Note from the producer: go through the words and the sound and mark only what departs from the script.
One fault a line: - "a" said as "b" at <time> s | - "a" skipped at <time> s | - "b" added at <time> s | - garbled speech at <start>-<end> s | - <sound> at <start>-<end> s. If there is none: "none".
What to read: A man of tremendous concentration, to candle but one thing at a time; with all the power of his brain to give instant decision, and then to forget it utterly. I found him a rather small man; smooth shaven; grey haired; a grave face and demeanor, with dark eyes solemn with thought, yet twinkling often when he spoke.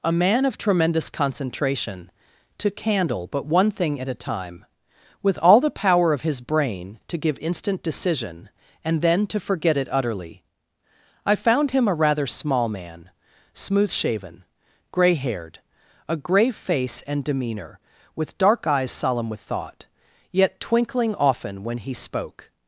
none